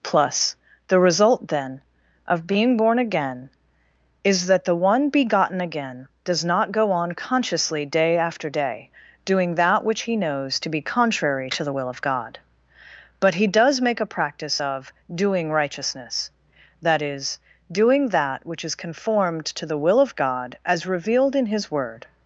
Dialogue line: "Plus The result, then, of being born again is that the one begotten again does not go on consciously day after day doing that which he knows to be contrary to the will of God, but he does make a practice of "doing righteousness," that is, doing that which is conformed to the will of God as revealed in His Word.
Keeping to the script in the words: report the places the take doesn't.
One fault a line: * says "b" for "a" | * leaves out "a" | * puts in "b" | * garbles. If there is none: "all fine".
all fine